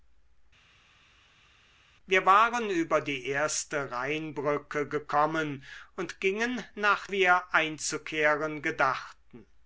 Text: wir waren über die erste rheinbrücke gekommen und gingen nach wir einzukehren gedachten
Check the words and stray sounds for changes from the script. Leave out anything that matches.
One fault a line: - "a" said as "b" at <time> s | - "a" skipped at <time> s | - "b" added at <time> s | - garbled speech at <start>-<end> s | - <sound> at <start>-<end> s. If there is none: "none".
none